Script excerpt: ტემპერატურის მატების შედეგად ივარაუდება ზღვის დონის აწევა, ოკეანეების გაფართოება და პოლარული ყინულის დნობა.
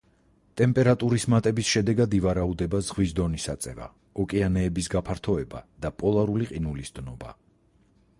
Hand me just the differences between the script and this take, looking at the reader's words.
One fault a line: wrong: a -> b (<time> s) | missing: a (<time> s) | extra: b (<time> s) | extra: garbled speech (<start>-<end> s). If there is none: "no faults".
no faults